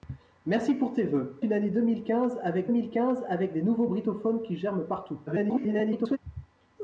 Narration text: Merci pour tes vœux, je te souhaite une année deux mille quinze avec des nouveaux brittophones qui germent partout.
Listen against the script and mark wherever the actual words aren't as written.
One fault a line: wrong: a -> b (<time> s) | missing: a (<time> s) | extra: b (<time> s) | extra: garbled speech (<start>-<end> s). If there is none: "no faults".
wrong: je te souhaite une année deux -> une année deux mille quinze avec (1.4 s)
extra: garbled speech (5.3-6.2 s)